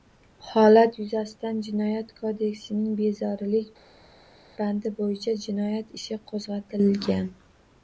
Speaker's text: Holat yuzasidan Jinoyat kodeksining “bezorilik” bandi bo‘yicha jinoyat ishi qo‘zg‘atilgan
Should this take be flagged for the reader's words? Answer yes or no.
no